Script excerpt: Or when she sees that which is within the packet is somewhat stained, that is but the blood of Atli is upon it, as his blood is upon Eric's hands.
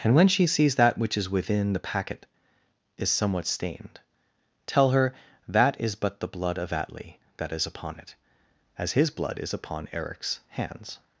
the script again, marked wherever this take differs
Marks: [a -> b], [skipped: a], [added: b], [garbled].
[Or -> And] when she sees that which is within the packet is somewhat stained, [added: tell her] that is but the blood of Atli [added: that] is upon it, as his blood is upon Eric's hands.